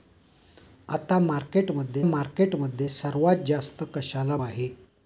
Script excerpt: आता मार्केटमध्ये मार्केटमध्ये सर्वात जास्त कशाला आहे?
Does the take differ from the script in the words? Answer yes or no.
no